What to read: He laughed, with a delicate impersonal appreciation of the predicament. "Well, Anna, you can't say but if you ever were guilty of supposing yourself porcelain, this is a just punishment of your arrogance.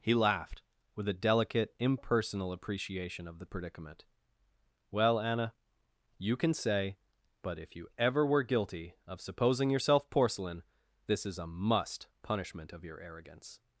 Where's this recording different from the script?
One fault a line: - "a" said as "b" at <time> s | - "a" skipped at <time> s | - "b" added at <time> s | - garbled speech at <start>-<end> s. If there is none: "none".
- "can't" said as "can" at 6.3 s
- "just" said as "must" at 11.5 s